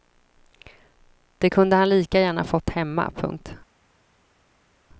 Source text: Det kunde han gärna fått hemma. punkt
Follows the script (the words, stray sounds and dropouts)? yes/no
no